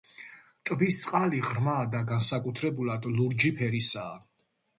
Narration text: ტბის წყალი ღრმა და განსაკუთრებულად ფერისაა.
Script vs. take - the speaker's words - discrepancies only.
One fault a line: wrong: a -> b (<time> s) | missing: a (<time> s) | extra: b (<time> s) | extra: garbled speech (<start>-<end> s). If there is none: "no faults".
extra: ლურჯი (3.2 s)